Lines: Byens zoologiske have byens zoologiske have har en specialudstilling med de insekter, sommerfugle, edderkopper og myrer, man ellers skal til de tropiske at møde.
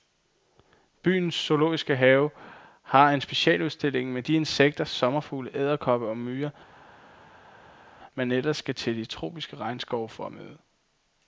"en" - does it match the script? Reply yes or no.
yes